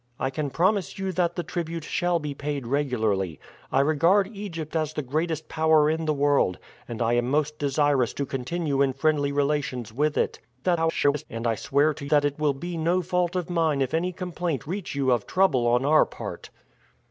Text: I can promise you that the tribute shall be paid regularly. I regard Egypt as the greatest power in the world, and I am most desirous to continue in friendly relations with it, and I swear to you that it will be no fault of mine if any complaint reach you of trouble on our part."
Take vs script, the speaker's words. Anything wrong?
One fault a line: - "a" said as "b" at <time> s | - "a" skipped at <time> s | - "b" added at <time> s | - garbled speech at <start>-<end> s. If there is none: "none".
- garbled speech at 10.6-11.3 s
- "you" skipped at 12.1 s